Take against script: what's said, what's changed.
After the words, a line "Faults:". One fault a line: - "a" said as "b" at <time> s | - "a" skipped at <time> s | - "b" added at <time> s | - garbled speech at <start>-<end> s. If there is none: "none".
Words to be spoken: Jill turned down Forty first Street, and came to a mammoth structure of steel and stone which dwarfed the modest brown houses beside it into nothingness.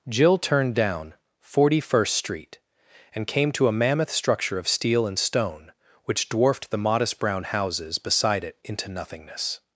Jill turned down Forty first Street, and came to a mammoth structure of steel and stone which dwarfed the modest brown houses beside it into nothingness.
Faults:
none